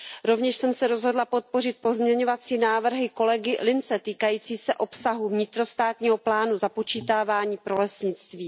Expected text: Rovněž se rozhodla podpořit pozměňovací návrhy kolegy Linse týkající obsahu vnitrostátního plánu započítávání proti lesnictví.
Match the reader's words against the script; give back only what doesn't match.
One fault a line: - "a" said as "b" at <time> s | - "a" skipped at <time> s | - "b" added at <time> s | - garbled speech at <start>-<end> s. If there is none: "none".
- "jsem" added at 0.6 s
- "se" added at 4.6 s
- "proti" said as "pro" at 7.6 s